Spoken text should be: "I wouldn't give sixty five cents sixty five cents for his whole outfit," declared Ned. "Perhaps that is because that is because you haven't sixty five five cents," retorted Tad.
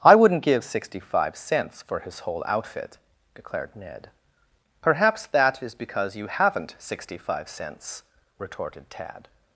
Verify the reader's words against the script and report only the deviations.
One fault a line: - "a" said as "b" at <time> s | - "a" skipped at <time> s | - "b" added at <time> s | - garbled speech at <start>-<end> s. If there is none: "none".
- "sixty five cents" skipped at 1.8 s
- "that is because" skipped at 6.2 s
- "five" skipped at 7.5 s